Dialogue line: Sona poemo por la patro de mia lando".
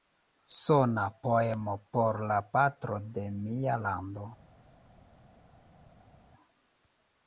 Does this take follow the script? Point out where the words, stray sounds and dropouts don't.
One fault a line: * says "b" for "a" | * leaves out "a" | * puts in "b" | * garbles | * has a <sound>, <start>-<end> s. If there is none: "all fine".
all fine